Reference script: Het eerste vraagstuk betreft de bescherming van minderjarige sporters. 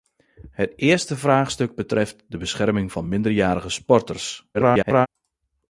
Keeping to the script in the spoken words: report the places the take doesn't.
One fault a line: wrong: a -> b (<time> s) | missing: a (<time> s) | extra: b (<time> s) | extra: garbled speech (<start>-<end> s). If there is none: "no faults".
extra: garbled speech (4.5-5.1 s)